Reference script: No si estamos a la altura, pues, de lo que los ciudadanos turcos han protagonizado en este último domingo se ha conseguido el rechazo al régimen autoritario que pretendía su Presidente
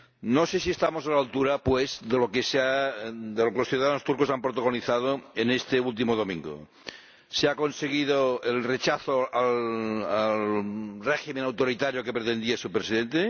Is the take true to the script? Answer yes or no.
no